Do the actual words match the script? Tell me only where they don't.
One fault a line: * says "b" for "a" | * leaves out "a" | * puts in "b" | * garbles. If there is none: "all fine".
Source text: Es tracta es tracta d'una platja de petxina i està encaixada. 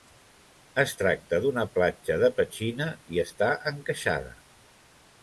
* leaves out "es tracta"